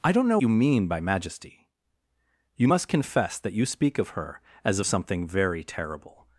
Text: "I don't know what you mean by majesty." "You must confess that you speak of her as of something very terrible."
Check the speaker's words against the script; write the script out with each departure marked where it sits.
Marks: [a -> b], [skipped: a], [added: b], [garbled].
"I don't know [skipped: what] you mean by majesty." "You must confess that you speak of her as [skipped: of] something very terrible."